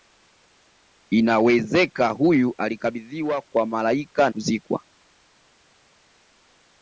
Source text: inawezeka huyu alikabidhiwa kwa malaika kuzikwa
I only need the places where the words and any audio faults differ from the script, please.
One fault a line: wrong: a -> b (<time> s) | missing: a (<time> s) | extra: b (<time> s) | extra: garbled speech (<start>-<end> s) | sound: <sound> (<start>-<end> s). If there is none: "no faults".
no faults